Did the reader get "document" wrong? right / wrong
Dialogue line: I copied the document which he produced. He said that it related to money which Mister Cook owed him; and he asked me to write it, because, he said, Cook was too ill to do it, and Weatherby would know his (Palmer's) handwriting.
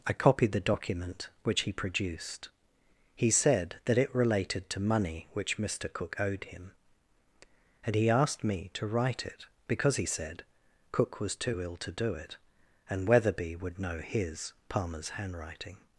right